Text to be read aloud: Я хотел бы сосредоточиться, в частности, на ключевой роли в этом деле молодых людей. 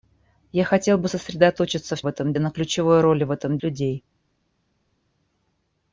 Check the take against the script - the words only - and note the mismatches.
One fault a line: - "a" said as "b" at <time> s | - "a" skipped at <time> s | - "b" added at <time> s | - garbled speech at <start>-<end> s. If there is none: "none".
- "частности" said as "этом" at 2.1 s
- "деле молодых" skipped at 3.6 s